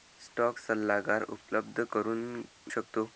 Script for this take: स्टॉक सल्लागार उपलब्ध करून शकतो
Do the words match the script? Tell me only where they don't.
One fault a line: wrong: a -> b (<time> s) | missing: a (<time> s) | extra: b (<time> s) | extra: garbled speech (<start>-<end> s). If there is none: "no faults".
no faults